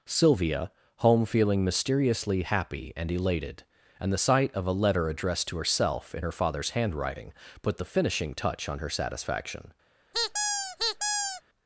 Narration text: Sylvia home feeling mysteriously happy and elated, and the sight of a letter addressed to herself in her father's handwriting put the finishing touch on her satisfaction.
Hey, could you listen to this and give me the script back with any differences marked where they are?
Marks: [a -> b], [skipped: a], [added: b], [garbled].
Sylvia home feeling mysteriously happy and elated, and the sight of a letter addressed to herself in her father's handwriting put the finishing touch on her satisfaction.